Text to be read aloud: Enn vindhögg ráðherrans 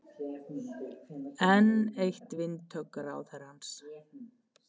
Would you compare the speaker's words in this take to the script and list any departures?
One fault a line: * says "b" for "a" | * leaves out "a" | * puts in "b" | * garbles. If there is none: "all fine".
* puts in "eitt"